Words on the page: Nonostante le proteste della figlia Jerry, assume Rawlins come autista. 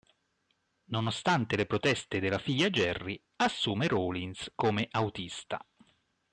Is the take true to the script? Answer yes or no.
yes